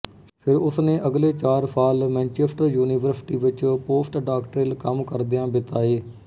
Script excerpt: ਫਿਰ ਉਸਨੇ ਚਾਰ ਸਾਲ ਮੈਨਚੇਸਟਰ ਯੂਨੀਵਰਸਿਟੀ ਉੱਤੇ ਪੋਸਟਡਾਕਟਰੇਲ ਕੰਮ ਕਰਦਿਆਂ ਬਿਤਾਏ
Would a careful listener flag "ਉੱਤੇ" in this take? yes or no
yes